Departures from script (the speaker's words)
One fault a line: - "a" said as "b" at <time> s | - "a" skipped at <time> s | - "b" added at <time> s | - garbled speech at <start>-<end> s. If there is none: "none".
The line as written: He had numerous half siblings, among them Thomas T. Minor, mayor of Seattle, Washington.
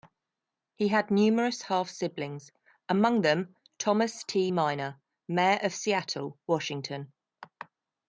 none